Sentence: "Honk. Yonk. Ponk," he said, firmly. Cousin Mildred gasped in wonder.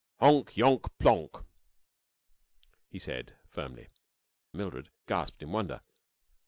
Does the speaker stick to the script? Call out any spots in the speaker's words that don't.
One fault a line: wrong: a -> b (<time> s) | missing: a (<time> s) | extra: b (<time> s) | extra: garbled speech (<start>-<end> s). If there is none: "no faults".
missing: Cousin (3.9 s)